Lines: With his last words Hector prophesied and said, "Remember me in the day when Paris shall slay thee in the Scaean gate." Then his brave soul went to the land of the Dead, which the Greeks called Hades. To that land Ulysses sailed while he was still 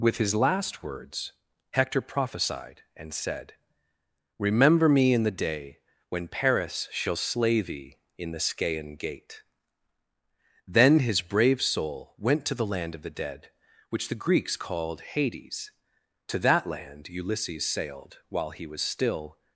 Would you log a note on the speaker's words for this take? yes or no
no